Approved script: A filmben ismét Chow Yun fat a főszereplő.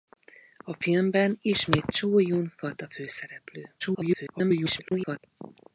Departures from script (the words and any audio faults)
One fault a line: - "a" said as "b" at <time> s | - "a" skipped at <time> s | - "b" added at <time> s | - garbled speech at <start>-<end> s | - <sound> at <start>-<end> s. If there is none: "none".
- garbled speech at 3.8-5.2 s